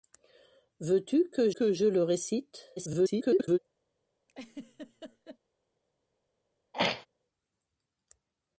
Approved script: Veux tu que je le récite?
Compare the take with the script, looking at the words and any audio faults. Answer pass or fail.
fail